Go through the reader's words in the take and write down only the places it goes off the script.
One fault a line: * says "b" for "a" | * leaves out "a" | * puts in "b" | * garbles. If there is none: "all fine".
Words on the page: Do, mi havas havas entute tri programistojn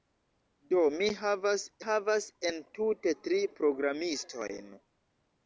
all fine